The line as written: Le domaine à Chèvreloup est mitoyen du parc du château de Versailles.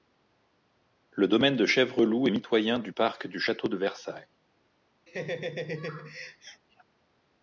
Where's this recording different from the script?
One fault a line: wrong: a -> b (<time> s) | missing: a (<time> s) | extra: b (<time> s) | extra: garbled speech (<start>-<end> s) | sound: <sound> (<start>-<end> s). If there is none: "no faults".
wrong: à -> de (1.6 s)
sound: laugh (5.1-6.6 s)